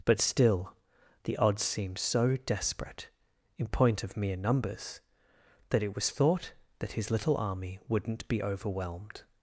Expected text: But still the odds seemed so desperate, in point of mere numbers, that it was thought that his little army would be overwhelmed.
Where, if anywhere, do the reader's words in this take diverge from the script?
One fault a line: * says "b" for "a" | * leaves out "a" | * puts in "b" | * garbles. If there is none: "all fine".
* says "wouldn't" for "would"